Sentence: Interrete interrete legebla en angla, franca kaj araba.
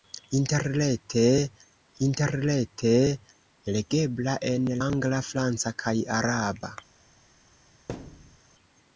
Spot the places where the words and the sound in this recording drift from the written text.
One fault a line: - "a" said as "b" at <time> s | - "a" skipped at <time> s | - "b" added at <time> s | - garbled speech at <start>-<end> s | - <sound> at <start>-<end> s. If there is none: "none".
- thud at 7.9-8.4 s